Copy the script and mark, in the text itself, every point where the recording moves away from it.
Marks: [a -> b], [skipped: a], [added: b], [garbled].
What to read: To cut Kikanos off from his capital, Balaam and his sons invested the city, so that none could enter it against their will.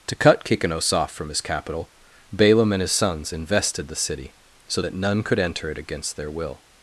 To cut Kikanos off from his capital, Balaam and his sons invested the city, so that none could enter it against their will.